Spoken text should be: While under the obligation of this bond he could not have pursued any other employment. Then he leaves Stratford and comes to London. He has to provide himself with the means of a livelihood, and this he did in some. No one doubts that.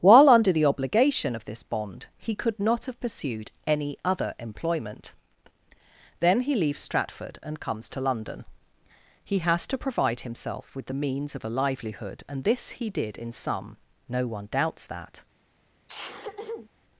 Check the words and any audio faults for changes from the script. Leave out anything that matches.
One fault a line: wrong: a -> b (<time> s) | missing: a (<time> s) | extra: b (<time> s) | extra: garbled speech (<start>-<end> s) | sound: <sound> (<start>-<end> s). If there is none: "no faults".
sound: sneeze (15.9-16.7 s)